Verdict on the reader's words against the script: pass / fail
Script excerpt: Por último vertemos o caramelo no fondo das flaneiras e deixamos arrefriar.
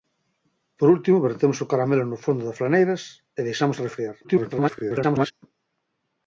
fail